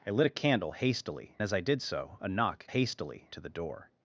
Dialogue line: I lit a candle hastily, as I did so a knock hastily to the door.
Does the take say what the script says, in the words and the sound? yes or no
yes